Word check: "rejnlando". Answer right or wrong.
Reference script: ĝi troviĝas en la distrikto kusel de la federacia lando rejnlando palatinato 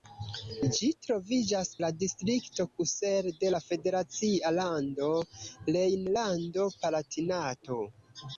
right